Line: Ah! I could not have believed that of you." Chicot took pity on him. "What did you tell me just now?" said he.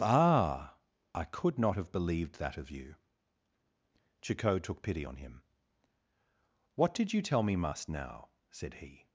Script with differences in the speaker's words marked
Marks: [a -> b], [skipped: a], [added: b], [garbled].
Ah! I could not have believed that of you." Chicot took pity on him. "What did you tell me [just -> must] now?" said he.